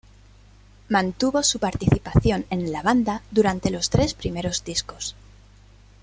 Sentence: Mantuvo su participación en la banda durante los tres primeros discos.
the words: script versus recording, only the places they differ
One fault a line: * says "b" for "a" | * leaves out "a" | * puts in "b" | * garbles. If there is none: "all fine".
all fine